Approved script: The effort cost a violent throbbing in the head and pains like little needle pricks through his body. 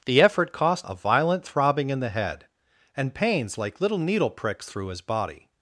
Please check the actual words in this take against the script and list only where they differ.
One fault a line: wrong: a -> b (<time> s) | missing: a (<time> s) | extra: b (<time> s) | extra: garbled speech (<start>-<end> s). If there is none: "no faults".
no faults